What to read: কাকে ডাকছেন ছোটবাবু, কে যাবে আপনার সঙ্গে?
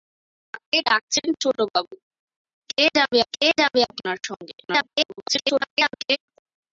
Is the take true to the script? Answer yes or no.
no